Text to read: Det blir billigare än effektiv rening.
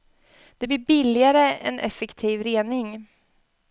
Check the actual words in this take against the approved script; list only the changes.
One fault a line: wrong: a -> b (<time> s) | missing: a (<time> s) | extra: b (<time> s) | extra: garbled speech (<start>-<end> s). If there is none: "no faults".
no faults